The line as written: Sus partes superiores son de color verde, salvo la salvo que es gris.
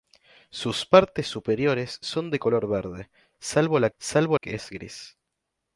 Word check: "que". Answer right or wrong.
right